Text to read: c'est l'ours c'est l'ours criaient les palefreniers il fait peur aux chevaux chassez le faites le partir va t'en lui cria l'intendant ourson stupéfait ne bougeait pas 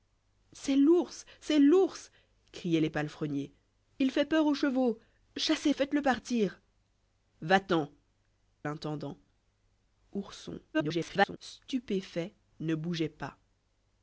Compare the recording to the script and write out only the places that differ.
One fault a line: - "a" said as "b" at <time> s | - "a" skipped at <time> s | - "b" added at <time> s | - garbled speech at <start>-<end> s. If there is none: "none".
- "le" skipped at 5.7 s
- "lui cria" skipped at 7.9 s
- garbled speech at 10.7-11.4 s